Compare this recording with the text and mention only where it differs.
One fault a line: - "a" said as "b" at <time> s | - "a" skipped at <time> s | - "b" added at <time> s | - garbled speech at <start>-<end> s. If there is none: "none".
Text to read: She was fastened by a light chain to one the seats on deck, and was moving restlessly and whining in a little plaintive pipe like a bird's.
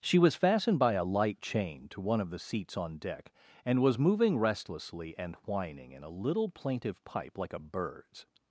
- "of" added at 2.2 s